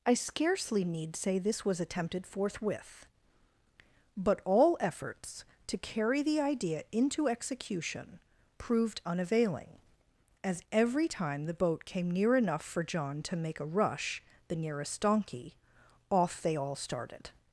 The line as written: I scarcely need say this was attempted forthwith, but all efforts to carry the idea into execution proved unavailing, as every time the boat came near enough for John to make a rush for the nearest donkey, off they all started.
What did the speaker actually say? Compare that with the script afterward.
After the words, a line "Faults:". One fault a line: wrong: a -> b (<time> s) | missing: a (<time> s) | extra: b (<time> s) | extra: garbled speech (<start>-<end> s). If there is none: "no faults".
I scarcely need say this was attempted forthwith, but all efforts to carry the idea into execution proved unavailing, as every time the boat came near enough for John to make a rush the nearest donkey, off they all started.
Faults:
missing: for (14.2 s)